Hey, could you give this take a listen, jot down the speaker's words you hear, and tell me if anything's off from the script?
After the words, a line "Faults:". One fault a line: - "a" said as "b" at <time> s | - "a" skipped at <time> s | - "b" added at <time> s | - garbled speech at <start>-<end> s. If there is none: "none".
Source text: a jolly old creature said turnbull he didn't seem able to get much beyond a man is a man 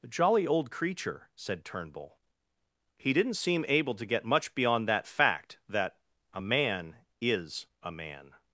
a jolly old creature said turnbull he didn't seem able to get much beyond that fact that a man is a man
Faults:
- "that fact that" added at 4.9 s